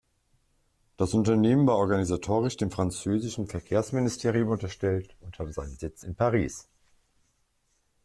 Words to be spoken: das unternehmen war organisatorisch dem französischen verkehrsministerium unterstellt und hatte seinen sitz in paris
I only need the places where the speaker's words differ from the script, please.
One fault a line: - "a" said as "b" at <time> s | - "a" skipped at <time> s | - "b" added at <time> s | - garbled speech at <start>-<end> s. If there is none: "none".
none